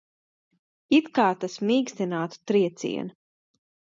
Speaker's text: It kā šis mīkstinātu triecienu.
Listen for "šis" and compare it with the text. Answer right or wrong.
wrong